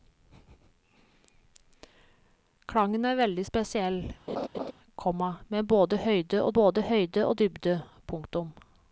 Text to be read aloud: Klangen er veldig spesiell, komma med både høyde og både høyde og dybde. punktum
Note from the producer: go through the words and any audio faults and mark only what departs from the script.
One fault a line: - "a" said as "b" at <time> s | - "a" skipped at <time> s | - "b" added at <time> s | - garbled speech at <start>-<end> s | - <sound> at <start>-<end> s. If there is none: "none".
- laugh at 4.3-4.7 s